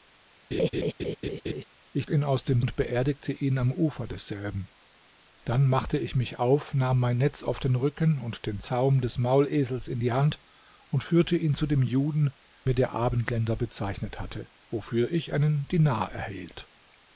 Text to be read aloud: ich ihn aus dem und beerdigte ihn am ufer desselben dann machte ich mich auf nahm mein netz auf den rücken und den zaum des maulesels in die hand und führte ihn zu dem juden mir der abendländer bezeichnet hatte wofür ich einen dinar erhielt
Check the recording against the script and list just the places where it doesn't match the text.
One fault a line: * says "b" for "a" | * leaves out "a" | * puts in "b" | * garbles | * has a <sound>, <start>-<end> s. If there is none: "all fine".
* has a laugh, 0.5-1.6 s